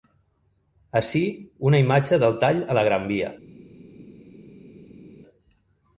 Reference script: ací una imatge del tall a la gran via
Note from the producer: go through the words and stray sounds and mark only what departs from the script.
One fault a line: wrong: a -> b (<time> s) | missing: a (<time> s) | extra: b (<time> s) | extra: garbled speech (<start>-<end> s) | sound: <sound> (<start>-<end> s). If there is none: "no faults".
no faults